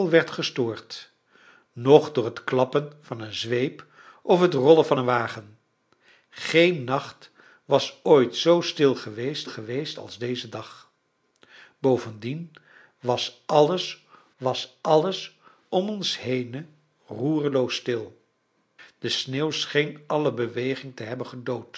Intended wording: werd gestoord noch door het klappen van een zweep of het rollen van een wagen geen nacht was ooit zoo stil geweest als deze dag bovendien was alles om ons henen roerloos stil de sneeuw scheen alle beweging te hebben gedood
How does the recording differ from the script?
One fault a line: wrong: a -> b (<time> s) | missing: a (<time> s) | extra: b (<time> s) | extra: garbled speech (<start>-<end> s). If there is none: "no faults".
extra: geweest (9.5 s)
extra: was alles (14.4 s)